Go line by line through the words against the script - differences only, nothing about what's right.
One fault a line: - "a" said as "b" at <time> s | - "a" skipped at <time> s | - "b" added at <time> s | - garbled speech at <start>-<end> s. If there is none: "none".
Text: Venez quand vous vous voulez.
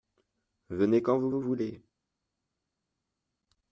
none